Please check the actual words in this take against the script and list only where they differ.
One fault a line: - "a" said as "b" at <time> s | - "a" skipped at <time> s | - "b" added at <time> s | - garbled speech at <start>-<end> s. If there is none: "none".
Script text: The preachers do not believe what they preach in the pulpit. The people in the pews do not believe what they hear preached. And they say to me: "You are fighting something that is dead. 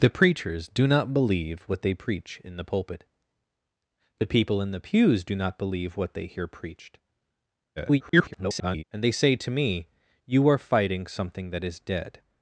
- garbled speech at 7.8-8.8 s